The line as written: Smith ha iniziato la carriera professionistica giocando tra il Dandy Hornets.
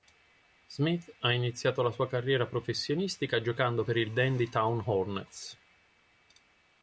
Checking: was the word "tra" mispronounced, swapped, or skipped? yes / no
yes